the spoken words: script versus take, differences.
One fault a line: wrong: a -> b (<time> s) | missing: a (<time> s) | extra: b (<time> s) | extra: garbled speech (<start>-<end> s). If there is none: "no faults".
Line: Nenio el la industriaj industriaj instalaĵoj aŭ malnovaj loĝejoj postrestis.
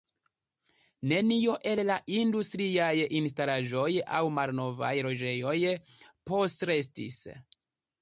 missing: industriaj (2.9 s)